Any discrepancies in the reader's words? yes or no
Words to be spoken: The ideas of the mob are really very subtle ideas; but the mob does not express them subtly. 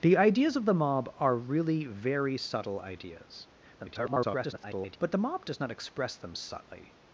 yes